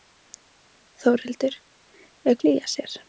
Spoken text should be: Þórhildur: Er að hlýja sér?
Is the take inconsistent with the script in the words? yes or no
no